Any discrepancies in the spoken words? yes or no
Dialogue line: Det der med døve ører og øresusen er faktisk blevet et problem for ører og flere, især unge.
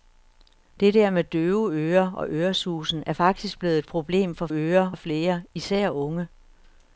no